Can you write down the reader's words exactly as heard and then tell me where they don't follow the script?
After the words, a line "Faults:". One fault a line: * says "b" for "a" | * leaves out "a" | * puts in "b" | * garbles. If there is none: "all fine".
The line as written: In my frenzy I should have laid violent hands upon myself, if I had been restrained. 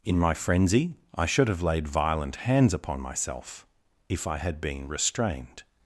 In my frenzy I should have laid violent hands upon myself, if I had been restrained.
Faults:
all fine